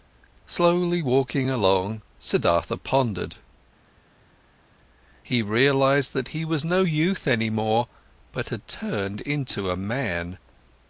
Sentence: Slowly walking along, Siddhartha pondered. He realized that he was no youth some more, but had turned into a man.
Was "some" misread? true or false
true